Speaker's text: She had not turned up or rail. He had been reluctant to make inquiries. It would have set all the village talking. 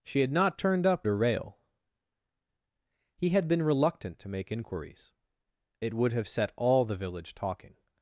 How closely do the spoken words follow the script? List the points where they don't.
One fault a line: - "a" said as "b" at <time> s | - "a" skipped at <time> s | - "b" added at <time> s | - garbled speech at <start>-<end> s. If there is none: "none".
none